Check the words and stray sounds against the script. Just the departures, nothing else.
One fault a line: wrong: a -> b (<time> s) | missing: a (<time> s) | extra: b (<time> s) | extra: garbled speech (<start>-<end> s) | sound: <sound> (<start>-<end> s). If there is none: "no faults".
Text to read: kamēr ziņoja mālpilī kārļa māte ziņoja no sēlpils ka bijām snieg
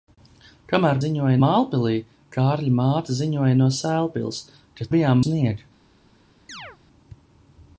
sound: chirp (6.5-6.8 s)